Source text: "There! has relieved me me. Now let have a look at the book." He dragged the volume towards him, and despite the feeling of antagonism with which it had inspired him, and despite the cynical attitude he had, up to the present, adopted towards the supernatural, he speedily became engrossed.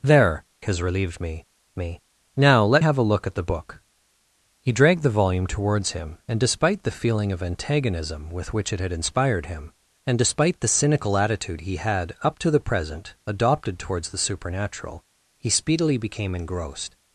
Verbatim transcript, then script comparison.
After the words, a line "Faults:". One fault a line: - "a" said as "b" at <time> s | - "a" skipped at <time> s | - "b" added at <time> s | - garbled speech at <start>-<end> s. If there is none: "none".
"There! has relieved me me. Now let have a look at the book." He dragged the volume towards him, and despite the feeling of antagonism with which it had inspired him, and despite the cynical attitude he had, up to the present, adopted towards the supernatural, he speedily became engrossed.
Faults:
none